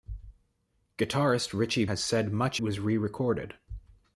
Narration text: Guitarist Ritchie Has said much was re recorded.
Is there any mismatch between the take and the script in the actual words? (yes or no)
no